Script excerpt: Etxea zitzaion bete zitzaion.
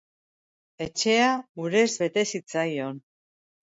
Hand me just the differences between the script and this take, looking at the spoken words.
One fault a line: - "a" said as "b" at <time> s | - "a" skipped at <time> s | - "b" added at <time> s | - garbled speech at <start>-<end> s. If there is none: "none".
- "zitzaion" said as "urez" at 1.6 s